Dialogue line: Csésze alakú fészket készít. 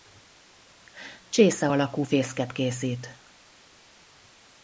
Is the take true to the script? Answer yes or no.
yes